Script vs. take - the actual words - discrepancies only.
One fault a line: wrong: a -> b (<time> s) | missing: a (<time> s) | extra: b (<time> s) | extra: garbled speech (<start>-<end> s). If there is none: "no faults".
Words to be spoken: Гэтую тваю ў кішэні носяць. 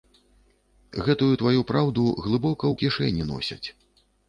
extra: праўду глыбока (1.7 s)